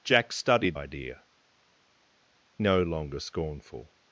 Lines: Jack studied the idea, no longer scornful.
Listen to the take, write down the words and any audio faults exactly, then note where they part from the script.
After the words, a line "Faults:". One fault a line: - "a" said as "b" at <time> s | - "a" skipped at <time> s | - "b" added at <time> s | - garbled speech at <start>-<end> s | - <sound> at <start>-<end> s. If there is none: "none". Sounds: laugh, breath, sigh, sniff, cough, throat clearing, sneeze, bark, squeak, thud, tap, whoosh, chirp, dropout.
Jack studied idea, no longer scornful.
Faults:
- "the" skipped at 0.8 s